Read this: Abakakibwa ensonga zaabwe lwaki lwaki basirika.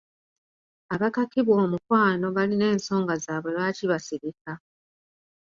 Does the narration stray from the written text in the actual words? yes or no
yes